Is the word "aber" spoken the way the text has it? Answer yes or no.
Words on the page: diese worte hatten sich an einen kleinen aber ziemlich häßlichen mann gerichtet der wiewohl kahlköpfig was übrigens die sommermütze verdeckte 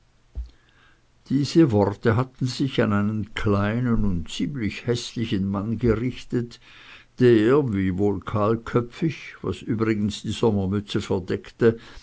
no